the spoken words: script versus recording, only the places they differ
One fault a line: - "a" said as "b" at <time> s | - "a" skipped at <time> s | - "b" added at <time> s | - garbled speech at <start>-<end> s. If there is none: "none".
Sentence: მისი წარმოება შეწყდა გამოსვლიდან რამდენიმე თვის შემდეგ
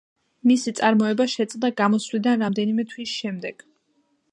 none